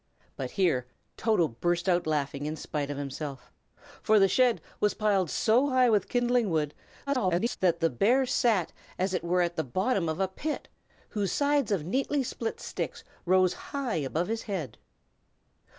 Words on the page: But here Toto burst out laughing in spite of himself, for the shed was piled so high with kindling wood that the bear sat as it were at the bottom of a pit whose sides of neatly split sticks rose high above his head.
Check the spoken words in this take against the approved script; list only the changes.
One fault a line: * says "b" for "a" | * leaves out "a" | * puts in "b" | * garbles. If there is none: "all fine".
* garbles